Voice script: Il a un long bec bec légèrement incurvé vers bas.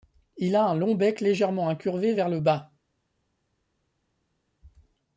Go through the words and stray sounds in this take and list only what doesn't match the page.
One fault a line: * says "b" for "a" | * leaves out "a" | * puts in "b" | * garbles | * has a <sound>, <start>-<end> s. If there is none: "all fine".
* leaves out "bec"
* puts in "le"